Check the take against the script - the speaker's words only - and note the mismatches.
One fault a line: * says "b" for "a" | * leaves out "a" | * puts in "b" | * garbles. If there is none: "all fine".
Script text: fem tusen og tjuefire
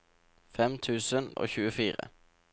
all fine